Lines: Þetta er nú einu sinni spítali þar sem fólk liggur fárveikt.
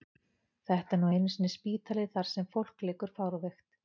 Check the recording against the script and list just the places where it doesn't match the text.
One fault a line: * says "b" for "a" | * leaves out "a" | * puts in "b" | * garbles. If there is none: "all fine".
all fine